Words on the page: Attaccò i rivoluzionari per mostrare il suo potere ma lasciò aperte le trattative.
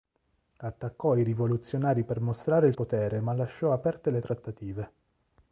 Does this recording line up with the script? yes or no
no